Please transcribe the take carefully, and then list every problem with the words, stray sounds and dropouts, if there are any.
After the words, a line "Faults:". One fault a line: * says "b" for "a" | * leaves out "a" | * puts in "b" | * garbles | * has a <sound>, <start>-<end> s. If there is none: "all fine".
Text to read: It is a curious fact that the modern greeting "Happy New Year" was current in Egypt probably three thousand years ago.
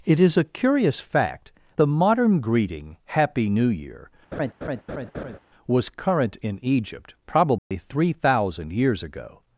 It is a curious fact the modern greeting "Happy New Year" was current in Egypt probably three thousand years ago.
Faults:
* leaves out "that"
* has a laugh, 4.3-5.4 s
* has a dropout, 7.6-7.7 s